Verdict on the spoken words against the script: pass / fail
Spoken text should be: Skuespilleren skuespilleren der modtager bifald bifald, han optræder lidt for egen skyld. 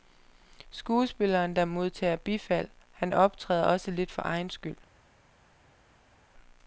fail